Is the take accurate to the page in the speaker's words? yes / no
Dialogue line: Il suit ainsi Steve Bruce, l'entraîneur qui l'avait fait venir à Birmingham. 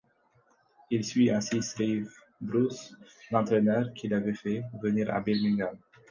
yes